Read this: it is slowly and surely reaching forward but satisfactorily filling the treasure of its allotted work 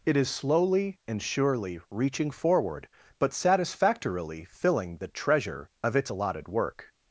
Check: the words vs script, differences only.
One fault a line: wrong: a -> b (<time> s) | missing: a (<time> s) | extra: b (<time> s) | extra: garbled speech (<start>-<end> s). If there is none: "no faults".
no faults